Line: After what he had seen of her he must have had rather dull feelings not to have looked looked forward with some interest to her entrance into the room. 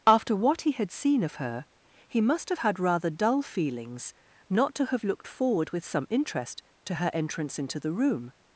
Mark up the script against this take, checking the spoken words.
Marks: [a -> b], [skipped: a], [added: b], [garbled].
After what he had seen of her he must have had rather dull feelings not to have looked [skipped: looked] forward with some interest to her entrance into the room.